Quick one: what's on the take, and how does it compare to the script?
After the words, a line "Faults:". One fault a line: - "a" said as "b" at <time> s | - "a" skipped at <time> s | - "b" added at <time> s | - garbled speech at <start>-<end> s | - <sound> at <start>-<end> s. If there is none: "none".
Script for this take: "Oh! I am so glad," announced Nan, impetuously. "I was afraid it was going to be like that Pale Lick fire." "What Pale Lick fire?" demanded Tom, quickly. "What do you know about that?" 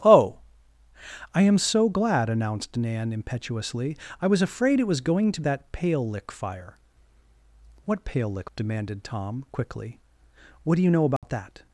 "Oh! I am so glad," announced Nan, impetuously. "I was afraid it was going to that Pale Lick fire." "What Pale Lick?" demanded Tom, quickly. "What do you know about that?"
Faults:
- "be like" skipped at 5.4 s
- "fire" skipped at 8.5 s
- dropout at 11.2-11.2 s